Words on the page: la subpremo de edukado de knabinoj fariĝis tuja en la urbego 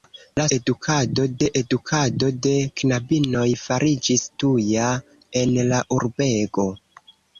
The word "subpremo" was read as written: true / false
false